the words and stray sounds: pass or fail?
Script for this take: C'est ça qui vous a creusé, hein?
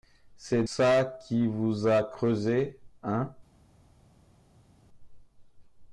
pass